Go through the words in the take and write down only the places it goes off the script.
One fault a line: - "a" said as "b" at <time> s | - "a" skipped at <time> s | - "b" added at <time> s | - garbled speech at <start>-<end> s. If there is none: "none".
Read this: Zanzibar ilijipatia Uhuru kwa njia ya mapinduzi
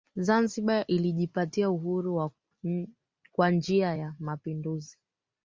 none